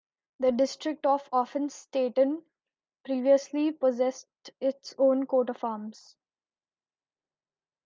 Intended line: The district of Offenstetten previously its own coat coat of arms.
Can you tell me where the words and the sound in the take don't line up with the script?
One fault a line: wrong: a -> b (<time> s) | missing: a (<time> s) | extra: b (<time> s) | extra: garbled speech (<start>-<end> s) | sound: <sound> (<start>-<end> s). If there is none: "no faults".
extra: possessed (3.7 s)
missing: coat (5.5 s)